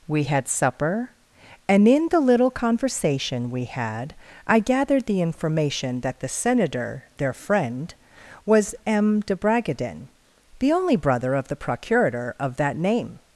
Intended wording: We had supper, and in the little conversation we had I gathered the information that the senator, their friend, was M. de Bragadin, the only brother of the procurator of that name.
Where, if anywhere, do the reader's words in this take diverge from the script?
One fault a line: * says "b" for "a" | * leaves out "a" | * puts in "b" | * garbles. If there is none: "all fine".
all fine